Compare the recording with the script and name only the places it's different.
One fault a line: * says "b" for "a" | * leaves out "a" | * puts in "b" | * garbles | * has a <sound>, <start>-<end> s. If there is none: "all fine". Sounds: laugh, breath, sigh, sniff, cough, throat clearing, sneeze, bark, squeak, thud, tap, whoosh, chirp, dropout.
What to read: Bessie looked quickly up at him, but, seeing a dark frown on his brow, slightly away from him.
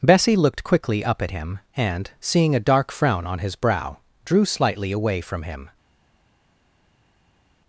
* says "and" for "but"
* puts in "drew"